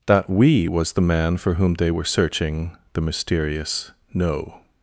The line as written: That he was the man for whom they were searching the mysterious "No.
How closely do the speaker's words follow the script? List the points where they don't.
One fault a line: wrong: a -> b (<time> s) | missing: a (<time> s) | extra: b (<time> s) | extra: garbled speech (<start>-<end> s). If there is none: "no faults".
wrong: he -> we (0.3 s)